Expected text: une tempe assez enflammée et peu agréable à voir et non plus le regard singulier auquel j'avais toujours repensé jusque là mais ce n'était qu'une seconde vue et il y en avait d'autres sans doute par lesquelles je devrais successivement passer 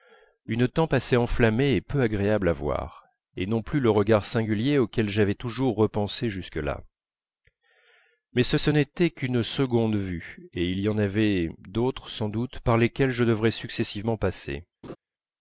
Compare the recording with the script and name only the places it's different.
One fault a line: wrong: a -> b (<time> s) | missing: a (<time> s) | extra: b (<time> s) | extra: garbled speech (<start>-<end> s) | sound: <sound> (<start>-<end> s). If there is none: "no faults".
extra: ce (8.5 s)
sound: laugh (14.8-15.0 s)